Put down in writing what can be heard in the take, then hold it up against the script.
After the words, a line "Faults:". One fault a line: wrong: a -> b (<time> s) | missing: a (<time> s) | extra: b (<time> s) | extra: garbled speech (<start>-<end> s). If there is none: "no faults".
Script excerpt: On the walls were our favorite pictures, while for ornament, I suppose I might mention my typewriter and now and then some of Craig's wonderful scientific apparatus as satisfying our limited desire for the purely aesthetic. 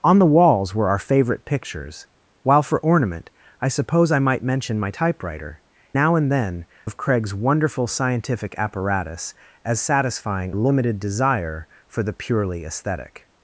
On the walls were our favorite pictures, while for ornament, I suppose I might mention my typewriter now and then of Craig's wonderful scientific apparatus as satisfying limited desire for the purely aesthetic.
Faults:
missing: and (5.6 s)
missing: some (6.7 s)
missing: our (10.5 s)